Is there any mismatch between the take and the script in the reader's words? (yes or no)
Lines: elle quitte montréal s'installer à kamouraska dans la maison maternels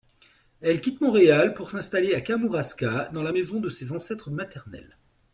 yes